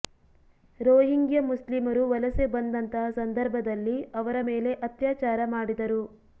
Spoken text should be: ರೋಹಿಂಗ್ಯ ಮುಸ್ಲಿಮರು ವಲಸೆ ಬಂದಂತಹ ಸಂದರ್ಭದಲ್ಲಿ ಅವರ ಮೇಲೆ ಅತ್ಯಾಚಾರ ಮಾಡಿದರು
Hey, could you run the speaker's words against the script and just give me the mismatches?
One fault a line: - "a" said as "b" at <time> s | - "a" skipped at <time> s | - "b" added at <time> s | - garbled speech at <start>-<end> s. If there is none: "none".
none